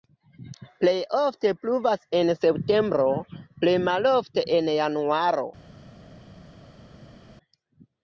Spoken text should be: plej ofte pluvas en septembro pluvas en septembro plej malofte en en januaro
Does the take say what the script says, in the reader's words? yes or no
no